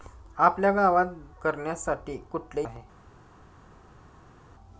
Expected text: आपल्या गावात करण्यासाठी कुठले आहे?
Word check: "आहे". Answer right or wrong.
right